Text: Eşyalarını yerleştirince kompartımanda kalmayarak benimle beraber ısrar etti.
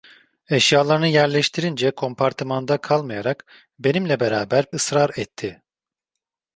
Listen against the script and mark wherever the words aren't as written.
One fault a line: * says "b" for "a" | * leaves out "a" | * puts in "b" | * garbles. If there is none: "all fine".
all fine